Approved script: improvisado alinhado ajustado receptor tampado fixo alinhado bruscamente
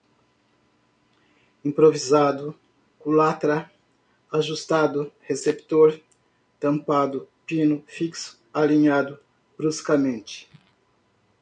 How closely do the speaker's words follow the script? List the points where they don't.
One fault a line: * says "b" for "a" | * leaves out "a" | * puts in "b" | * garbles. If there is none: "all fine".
* says "culatra" for "alinhado"
* puts in "pino"